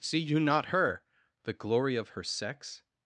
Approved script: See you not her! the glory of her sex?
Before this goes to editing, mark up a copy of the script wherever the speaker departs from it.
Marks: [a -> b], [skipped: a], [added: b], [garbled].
See you not her! the glory of her sex?